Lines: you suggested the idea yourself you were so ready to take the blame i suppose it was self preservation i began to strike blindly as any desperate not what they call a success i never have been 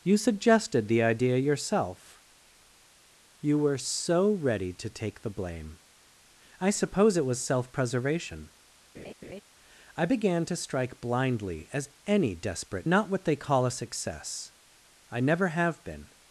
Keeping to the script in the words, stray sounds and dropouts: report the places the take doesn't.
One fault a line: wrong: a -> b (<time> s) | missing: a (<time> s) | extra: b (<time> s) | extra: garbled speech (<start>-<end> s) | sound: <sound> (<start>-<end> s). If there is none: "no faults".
sound: laugh (8.9-9.4 s)